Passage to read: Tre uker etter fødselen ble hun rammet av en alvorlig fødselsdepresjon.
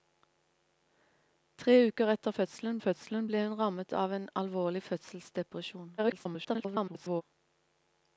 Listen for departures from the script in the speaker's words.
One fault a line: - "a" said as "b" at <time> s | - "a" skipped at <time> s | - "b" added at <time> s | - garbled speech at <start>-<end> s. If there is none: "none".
- "fødselen" added at 2.8 s
- garbled speech at 6.0-7.2 s